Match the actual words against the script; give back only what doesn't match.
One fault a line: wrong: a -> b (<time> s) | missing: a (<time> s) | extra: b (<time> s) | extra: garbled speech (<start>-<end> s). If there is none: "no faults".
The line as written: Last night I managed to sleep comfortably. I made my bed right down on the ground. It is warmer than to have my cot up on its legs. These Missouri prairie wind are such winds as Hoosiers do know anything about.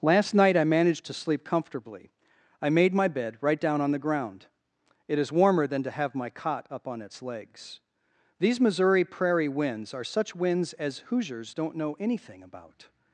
wrong: wind -> winds (9.5 s)
wrong: do -> don't (11.5 s)